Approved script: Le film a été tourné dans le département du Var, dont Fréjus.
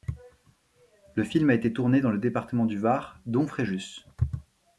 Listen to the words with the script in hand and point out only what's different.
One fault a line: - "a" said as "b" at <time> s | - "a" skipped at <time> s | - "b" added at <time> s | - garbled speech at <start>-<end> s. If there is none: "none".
none